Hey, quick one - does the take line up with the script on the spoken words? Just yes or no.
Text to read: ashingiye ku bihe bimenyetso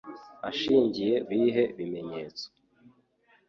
no